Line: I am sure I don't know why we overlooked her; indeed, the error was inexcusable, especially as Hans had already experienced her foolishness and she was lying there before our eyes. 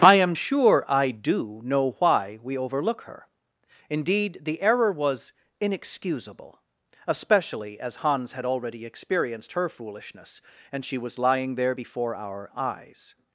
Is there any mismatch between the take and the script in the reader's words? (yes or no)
yes